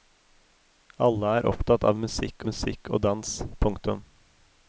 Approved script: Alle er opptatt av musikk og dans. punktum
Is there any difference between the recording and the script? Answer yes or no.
yes